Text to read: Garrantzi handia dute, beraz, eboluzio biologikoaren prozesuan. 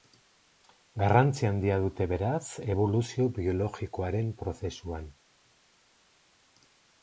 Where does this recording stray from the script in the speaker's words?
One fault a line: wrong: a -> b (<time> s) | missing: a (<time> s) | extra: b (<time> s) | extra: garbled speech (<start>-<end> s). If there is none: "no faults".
no faults